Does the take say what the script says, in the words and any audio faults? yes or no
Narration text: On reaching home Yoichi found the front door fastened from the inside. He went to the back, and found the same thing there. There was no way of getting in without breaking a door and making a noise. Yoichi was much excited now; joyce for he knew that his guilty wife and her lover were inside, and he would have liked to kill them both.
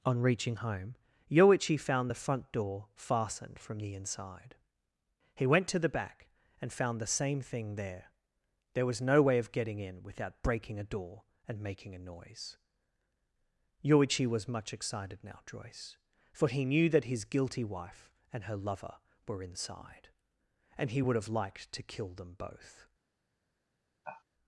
no